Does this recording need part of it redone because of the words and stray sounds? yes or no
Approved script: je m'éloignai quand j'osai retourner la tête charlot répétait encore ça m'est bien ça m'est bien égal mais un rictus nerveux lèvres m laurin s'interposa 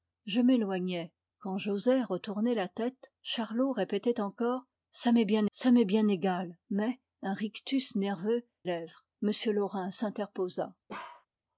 yes